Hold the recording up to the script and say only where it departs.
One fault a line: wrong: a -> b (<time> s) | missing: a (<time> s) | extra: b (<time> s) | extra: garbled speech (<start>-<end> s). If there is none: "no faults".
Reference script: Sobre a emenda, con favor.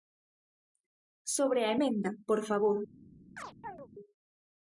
wrong: con -> por (2.3 s)